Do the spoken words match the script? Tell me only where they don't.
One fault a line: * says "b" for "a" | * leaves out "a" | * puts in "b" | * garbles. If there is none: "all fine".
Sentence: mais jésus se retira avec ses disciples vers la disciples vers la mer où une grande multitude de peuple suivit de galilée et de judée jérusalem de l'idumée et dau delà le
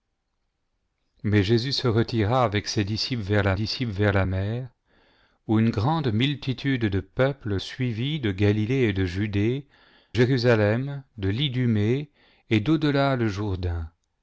all fine